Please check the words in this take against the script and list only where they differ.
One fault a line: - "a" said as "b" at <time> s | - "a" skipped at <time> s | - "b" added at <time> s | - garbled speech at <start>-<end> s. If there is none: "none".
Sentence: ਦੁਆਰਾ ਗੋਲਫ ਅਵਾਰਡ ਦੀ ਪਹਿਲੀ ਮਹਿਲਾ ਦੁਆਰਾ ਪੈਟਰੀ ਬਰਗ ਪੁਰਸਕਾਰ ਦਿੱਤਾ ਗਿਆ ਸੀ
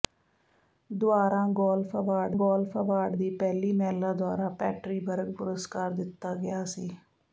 - "ਗੋਲਫ ਅਵਾਰਡ" added at 2.3 s